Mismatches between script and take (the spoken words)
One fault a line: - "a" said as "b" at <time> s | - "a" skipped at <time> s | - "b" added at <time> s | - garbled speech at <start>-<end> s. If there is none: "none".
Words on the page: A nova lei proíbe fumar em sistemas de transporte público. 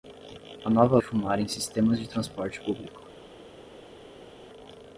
- "lei proíbe" skipped at 1.0 s